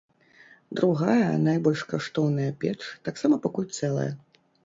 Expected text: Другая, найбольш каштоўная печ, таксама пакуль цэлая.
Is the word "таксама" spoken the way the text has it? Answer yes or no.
yes